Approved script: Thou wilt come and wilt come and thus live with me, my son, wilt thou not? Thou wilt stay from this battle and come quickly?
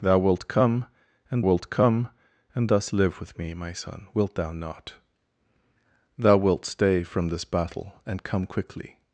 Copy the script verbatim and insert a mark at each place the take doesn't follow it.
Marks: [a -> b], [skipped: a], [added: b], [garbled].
Thou wilt come and wilt come and thus live with me, my son, wilt thou not? Thou wilt stay from this battle and come quickly?